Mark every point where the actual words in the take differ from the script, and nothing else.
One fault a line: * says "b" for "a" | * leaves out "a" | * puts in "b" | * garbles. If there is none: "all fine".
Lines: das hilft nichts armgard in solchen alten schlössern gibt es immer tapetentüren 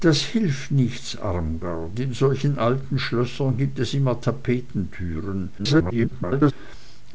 * garbles